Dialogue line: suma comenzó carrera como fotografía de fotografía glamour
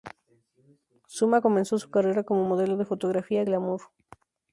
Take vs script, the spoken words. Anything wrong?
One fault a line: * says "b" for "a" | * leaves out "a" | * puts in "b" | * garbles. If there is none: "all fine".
* puts in "su"
* says "modelo" for "fotografía"